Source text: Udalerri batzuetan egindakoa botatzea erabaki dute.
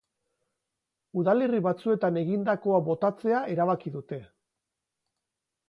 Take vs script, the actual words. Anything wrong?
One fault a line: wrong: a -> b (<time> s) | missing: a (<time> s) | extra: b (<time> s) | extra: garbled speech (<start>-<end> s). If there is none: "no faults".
no faults